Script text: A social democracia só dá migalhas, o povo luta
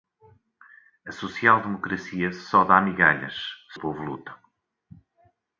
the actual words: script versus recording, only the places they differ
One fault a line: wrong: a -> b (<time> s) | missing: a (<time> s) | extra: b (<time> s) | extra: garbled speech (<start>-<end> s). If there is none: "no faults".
no faults